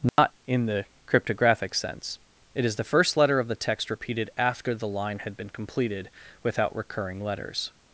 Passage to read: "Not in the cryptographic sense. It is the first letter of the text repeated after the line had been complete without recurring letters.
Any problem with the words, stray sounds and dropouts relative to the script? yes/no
yes